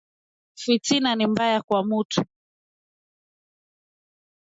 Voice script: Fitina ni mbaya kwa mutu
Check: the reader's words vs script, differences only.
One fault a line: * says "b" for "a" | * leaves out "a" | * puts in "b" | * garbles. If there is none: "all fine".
all fine